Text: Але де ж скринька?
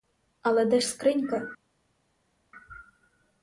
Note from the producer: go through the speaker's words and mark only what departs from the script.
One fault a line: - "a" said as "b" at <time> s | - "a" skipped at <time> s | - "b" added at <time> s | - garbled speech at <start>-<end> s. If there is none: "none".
none